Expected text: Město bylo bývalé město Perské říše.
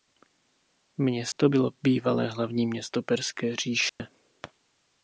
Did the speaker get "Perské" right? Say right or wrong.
right